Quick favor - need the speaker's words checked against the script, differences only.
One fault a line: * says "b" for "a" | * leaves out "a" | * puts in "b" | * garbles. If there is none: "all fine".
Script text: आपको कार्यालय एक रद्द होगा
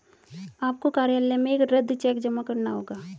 * puts in "में"
* puts in "चेक जमा करना"